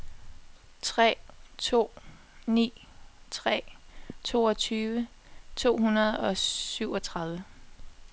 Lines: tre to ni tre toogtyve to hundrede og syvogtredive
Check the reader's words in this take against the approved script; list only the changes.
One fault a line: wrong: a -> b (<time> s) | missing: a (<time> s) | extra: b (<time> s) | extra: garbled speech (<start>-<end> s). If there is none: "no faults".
no faults